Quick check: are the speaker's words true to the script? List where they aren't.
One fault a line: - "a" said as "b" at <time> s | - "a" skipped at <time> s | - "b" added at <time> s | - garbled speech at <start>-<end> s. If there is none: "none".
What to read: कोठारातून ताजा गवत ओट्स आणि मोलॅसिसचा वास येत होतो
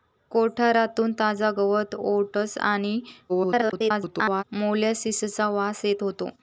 - garbled speech at 3.3-4.4 s